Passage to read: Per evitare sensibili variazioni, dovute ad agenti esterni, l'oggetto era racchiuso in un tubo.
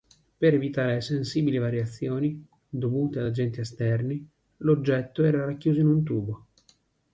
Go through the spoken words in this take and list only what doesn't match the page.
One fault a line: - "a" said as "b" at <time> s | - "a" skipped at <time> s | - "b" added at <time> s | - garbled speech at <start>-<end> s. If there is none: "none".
none